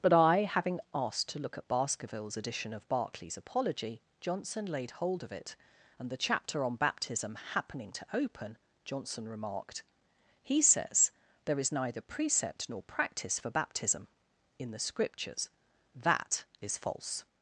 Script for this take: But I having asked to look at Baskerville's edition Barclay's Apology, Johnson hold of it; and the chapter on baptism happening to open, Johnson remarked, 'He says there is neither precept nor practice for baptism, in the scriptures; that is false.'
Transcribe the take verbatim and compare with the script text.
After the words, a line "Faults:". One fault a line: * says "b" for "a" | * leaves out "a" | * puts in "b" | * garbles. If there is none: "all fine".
But I having asked to look at Baskerville's edition of Barclay's Apology, Johnson laid hold of it; and the chapter on baptism happening to open, Johnson remarked, 'He says there is neither precept nor practice for baptism, in the scriptures; that is false.'
Faults:
* puts in "of"
* puts in "laid"